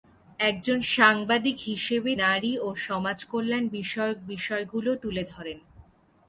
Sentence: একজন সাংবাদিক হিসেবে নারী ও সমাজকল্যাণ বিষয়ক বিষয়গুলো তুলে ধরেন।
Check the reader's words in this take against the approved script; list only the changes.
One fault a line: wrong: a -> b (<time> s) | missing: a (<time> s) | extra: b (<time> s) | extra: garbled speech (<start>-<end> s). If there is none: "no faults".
no faults